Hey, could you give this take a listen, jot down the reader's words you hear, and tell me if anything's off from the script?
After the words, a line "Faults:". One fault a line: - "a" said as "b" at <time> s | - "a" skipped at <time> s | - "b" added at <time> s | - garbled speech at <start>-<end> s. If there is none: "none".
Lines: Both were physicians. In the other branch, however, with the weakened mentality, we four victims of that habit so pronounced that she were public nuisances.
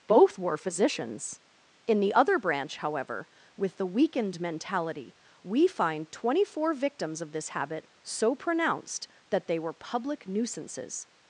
Both were physicians. In the other branch, however, with the weakened mentality, we find twenty four victims of this habit so pronounced that they were public nuisances.
Faults:
- "find twenty" added at 5.7 s
- "that" said as "this" at 7.3 s
- "she" said as "they" at 9.5 s